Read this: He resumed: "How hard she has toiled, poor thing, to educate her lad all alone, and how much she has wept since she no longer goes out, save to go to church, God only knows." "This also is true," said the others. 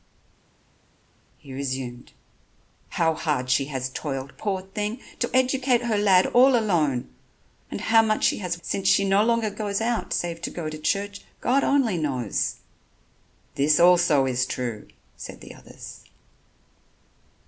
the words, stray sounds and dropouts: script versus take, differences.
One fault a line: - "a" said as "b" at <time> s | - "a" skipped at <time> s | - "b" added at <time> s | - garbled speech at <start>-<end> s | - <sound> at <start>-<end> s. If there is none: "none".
- "wept" skipped at 8.6 s